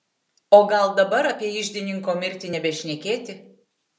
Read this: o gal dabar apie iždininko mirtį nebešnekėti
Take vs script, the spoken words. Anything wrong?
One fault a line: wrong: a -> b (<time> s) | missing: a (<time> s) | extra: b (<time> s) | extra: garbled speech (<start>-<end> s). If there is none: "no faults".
no faults